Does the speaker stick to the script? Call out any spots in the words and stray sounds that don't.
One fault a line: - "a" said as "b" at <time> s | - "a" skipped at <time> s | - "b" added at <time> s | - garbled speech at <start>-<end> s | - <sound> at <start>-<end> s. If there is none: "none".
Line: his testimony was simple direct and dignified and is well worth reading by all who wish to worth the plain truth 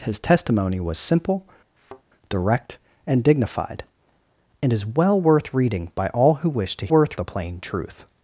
- thud at 1.8-2.0 s